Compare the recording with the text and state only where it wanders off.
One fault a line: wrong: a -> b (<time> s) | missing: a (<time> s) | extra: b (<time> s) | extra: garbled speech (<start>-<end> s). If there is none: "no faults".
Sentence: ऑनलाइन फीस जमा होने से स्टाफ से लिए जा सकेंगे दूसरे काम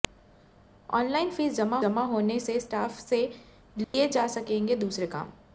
extra: जमा (1.8 s)